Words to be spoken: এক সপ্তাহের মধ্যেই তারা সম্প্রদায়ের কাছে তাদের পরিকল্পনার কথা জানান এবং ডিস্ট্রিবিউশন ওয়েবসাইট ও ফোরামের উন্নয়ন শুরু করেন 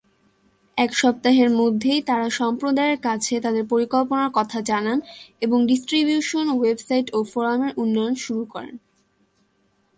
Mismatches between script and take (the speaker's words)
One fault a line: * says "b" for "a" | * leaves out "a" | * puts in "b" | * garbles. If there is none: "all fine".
all fine